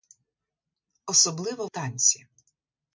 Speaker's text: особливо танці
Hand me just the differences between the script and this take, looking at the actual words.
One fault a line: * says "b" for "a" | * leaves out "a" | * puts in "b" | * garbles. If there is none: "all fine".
all fine